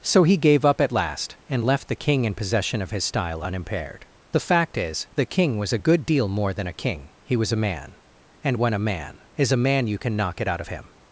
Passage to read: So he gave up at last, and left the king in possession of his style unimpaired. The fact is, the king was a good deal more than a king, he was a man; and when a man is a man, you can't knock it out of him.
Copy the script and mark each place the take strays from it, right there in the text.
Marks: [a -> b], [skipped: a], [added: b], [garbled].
So he gave up at last, and left the king in possession of his style unimpaired. The fact is, the king was a good deal more than a king, he was a man; and when a man is a man, you [can't -> can] knock it out of him.